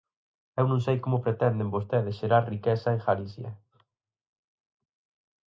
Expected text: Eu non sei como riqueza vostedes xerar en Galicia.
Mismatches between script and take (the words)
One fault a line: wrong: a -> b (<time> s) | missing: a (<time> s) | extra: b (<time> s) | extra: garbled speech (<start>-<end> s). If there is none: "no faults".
wrong: riqueza -> pretenden (1.2 s)
extra: riqueza (2.5 s)